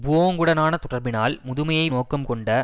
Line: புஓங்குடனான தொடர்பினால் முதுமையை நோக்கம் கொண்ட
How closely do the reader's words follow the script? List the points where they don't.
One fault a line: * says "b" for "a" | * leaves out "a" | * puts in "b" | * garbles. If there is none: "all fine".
all fine